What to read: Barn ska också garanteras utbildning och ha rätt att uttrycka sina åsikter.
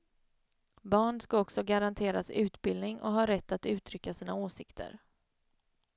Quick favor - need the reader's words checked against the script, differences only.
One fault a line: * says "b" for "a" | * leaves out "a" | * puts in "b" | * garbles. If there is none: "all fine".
all fine